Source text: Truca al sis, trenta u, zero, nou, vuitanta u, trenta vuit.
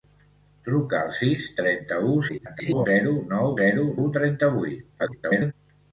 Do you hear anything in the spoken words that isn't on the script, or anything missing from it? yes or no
yes